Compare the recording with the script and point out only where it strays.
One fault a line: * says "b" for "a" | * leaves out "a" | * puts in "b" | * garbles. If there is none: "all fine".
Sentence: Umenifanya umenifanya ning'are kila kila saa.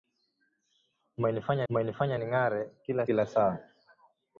all fine